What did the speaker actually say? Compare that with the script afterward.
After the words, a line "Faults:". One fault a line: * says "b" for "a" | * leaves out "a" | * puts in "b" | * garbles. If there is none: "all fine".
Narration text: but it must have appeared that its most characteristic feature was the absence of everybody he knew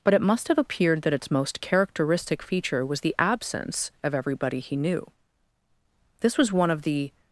but it must have appeared that its most characteristic feature was the absence of everybody he knew this was one of the
Faults:
* puts in "this was one of the"